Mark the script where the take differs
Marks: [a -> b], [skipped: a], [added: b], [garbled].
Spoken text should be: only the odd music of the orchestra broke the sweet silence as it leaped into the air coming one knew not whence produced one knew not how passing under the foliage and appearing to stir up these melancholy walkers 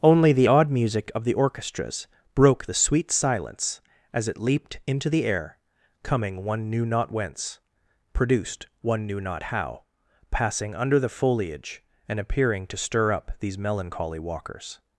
only the odd music of the [orchestra -> orchestras] broke the sweet silence as it leaped into the air coming one knew not whence produced one knew not how passing under the foliage and appearing to stir up these melancholy walkers